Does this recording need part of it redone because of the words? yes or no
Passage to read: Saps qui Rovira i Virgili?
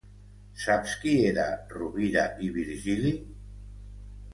yes